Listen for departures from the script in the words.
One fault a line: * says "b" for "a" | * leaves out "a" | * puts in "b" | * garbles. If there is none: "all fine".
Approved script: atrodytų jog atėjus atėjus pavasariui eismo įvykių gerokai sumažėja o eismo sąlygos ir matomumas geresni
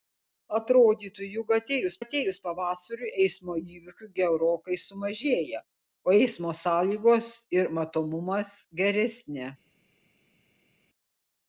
all fine